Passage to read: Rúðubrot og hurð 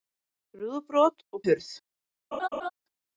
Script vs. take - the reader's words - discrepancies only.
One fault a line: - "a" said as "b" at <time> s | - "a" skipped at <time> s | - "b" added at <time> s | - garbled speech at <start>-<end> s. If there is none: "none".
none